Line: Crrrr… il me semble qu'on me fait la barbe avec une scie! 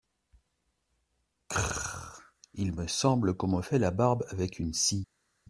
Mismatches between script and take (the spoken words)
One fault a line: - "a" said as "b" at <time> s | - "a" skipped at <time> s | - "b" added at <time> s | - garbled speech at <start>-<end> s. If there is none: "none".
none